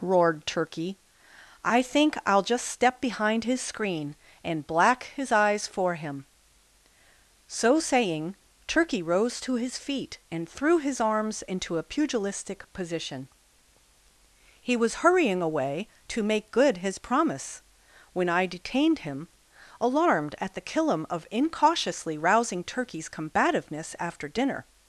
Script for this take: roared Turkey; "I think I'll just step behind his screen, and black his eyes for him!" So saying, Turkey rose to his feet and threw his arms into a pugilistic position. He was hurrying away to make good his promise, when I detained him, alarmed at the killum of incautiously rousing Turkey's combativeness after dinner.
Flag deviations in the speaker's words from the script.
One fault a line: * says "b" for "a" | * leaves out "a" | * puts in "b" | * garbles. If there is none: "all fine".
all fine